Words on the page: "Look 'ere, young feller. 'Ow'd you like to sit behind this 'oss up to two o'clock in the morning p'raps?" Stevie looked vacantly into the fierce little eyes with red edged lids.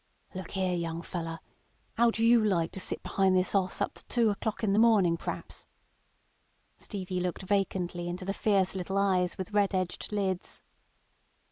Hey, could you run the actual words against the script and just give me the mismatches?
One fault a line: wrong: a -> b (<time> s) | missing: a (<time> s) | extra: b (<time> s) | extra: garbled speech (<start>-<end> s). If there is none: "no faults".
no faults